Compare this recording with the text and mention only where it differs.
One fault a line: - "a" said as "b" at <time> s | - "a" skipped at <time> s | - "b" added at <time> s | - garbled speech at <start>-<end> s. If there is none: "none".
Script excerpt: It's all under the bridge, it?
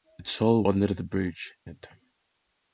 none